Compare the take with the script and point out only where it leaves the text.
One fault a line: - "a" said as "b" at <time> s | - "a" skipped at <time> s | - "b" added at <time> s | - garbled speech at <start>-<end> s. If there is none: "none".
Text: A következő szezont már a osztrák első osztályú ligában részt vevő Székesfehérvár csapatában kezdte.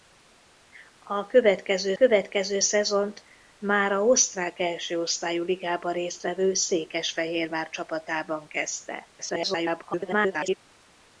- "következő" added at 1.9 s
- garbled speech at 9.2-10.6 s